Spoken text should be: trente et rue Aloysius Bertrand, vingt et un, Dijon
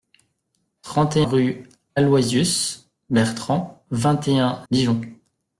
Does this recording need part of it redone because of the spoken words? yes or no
no